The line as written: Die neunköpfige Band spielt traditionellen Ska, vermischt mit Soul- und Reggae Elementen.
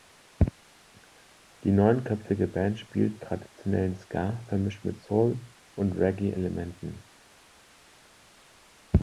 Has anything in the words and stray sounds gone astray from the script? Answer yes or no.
no